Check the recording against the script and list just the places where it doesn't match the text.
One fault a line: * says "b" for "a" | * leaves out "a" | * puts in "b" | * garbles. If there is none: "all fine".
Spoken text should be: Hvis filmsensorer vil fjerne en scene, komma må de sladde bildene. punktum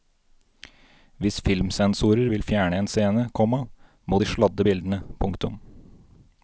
all fine